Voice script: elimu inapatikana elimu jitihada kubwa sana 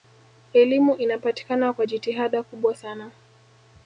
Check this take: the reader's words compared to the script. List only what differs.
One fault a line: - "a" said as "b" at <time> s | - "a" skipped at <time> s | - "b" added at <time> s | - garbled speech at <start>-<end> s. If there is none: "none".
- "elimu" said as "kwa" at 1.7 s